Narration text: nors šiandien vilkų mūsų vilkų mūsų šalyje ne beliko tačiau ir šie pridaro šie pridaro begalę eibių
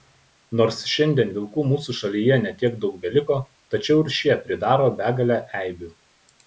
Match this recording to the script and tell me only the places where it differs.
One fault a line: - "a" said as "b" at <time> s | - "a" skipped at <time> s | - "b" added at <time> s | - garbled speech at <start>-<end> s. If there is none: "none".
- "vilkų mūsų šalyje ne" said as "šalyje ne tiek daug" at 2.0 s
- "šie pridaro" skipped at 4.9 s